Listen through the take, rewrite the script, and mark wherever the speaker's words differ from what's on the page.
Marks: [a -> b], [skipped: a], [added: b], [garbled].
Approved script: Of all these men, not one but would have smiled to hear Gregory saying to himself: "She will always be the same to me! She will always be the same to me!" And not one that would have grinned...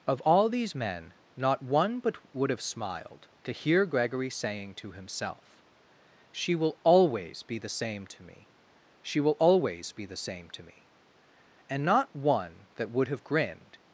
Of all these men, not one but would have smiled to hear Gregory saying to himself: "She will always be the same to me! She will always be the same to me!" And not one that would have grinned...